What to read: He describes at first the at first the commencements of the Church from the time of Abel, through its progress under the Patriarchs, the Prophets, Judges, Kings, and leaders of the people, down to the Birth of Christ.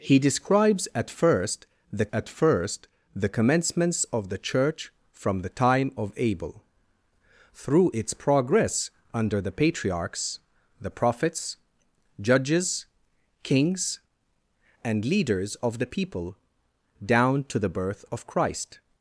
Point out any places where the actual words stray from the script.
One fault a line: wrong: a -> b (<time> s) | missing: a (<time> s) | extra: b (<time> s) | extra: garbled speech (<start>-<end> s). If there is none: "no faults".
no faults